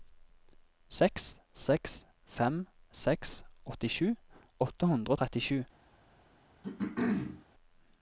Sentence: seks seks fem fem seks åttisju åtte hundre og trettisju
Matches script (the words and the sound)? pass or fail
fail